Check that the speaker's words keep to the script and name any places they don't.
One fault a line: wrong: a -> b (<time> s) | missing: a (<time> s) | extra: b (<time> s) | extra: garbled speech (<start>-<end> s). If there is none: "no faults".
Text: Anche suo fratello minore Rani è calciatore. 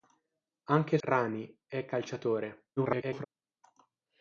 missing: suo fratello minore (1.0 s)
extra: garbled speech (2.8-3.3 s)